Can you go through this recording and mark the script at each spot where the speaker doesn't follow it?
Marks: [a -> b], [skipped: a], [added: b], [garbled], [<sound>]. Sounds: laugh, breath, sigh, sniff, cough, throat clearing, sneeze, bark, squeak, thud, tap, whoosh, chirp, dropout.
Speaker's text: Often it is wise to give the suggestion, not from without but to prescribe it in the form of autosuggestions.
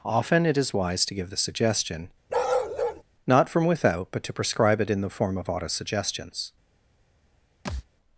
Often it is wise to give the suggestion, [bark] not from without but to prescribe it in the form of autosuggestions. [thud]